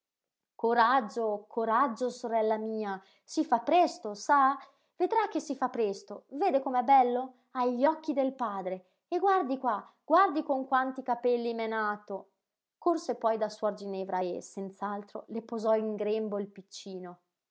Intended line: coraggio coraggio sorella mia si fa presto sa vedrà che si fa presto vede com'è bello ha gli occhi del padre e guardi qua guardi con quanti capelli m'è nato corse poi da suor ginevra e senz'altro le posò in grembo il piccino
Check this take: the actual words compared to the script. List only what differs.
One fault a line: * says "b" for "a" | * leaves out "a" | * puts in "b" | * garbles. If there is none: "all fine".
all fine